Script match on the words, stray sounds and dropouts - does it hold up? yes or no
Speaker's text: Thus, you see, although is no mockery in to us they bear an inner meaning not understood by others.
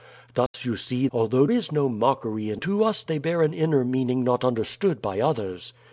no